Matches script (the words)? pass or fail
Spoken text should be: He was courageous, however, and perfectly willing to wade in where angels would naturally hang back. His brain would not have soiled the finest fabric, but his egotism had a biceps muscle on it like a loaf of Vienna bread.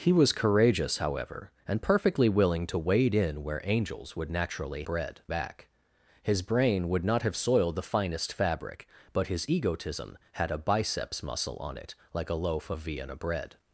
fail